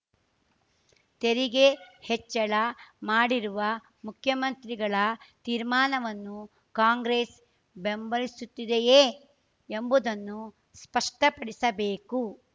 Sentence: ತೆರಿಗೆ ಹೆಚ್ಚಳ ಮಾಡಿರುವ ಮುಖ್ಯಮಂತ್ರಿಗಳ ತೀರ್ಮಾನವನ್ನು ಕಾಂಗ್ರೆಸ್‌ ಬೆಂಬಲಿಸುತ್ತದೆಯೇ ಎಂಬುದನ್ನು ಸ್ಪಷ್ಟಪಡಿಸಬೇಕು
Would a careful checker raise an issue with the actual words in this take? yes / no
no